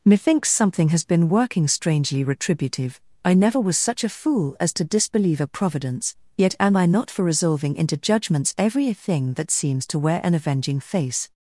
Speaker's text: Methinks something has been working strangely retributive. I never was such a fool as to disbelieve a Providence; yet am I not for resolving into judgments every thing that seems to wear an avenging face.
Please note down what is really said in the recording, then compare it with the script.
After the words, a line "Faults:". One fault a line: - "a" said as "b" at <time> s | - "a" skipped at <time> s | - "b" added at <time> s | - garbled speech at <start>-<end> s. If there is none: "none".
Methinks something has been working strangely retributive. I never was such a fool as to disbelieve a Providence; yet am I not for resolving into judgments every thing that seems to wear an avenging face.
Faults:
none